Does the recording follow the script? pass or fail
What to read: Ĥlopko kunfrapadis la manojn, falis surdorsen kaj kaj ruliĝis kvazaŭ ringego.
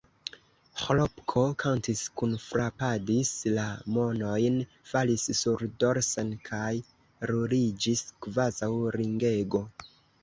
fail